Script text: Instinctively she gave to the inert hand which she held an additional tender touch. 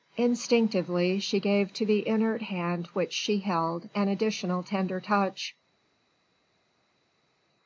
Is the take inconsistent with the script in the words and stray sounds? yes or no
no